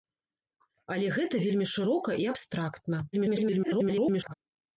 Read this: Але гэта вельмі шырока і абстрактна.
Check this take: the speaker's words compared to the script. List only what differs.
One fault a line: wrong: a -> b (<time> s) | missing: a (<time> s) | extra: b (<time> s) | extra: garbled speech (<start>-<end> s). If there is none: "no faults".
extra: garbled speech (3.1-4.3 s)